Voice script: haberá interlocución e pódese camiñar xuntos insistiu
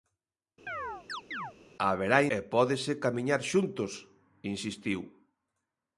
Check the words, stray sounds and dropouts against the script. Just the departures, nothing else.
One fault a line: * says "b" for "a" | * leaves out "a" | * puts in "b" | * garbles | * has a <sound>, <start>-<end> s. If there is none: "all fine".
* has a chirp, 0.7-1.5 s
* leaves out "interlocución"